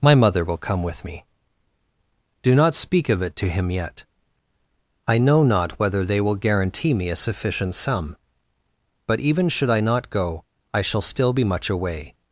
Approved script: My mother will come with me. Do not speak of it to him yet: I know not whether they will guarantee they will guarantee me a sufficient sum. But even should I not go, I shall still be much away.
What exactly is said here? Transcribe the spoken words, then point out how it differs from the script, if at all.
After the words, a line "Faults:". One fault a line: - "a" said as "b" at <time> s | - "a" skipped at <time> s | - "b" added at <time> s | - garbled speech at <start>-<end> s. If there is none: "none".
My mother will come with me. Do not speak of it to him yet: I know not whether they will guarantee me a sufficient sum. But even should I not go, I shall still be much away.
Faults:
- "they will guarantee" skipped at 7.0 s